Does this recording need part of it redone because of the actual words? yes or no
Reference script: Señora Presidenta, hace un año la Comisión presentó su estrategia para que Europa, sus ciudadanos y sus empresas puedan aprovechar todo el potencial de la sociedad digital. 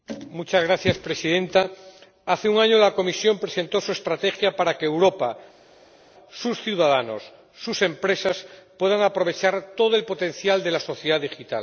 no